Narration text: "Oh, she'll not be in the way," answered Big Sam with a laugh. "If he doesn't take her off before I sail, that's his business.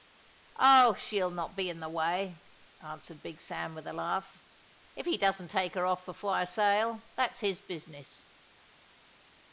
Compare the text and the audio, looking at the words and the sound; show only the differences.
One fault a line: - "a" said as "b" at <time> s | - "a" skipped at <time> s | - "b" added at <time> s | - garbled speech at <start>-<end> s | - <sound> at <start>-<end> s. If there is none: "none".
none